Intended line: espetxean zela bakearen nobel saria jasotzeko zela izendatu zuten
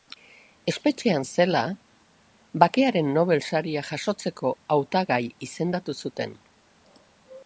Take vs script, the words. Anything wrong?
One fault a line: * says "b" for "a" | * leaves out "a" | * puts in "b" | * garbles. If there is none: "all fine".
* says "hautagai" for "zela"